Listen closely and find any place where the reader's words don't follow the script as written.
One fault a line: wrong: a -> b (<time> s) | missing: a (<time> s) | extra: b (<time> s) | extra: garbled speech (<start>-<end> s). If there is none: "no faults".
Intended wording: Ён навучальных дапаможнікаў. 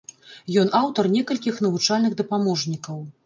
extra: аўтар некалькіх (0.8 s)